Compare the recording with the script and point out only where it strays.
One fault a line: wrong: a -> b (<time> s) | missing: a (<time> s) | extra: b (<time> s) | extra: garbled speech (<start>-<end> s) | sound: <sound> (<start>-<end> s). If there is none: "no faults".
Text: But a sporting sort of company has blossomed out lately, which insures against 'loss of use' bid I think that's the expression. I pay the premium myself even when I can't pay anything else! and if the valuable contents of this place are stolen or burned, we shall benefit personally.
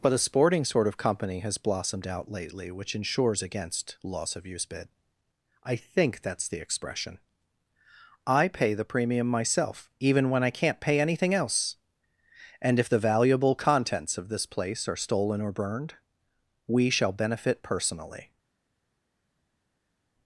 no faults